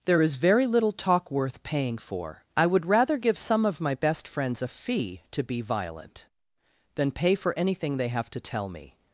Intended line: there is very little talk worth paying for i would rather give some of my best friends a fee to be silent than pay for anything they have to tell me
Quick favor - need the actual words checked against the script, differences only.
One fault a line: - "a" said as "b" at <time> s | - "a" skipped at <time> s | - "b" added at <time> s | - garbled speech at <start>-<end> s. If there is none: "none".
- "silent" said as "violent" at 5.6 s